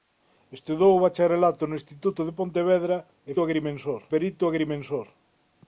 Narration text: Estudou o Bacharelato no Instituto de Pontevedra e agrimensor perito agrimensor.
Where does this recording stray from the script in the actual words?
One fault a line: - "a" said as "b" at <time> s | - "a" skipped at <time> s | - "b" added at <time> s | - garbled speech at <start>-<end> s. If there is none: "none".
none